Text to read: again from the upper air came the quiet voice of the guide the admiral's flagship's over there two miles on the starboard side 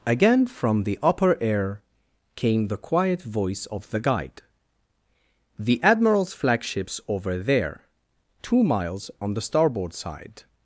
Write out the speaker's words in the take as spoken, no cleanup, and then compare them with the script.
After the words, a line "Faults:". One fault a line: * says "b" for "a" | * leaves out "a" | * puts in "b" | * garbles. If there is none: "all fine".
again from the upper air came the quiet voice of the guide the admiral's flagship's over there two miles on the starboard side
Faults:
all fine